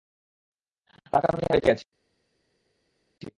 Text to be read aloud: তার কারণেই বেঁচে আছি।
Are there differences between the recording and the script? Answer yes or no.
no